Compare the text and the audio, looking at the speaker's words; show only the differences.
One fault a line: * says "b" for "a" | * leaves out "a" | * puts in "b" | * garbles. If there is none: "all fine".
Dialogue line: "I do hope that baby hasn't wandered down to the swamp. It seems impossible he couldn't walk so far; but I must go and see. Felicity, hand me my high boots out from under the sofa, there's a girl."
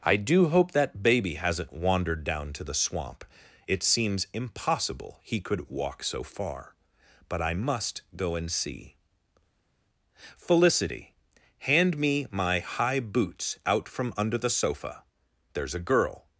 * says "could" for "couldn't"